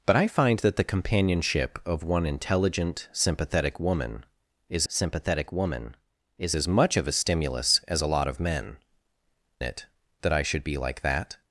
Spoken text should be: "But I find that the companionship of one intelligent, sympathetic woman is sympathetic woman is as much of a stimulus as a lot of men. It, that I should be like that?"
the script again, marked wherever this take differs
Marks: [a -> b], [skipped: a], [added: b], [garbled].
"But I find that the companionship of one intelligent, sympathetic woman is sympathetic woman is as much of a stimulus as a lot of men. It, that I should be like that?"